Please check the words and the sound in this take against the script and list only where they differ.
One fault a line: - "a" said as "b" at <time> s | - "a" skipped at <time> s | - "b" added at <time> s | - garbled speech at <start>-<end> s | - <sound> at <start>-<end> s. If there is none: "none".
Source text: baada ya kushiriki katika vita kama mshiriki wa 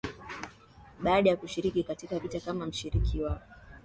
none